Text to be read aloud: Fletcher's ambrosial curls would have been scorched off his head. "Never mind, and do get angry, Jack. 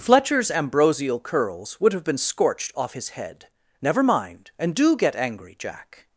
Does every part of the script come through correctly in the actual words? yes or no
yes